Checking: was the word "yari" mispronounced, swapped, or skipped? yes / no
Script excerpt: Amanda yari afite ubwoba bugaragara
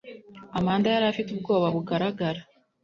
no